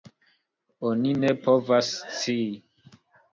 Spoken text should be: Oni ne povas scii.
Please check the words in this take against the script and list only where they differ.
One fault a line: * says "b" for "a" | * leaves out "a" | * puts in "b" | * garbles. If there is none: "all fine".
all fine